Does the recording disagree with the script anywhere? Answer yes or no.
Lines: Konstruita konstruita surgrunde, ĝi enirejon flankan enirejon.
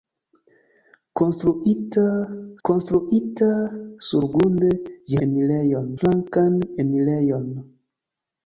no